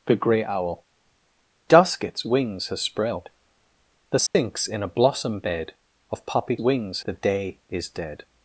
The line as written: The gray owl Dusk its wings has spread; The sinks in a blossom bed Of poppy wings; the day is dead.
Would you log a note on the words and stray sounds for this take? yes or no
yes